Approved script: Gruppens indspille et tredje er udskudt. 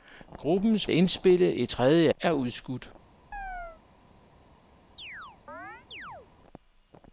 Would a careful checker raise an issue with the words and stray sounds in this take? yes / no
yes